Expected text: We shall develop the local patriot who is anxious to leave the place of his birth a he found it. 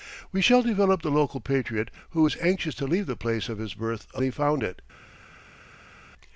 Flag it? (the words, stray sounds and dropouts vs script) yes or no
no